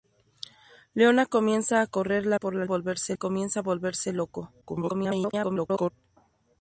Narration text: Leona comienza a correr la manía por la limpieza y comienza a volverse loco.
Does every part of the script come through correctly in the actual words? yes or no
no